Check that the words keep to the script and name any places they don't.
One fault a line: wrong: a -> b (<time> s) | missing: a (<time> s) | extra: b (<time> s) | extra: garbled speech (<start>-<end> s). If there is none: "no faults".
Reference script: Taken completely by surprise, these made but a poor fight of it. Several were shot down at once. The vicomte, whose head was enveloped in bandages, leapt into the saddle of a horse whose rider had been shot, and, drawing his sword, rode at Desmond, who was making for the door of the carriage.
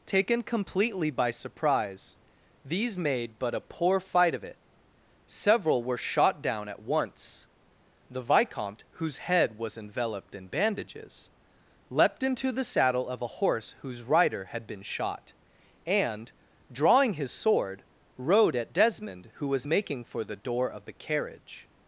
no faults